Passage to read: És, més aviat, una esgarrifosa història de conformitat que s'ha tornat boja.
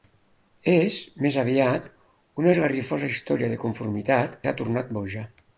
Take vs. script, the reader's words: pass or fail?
fail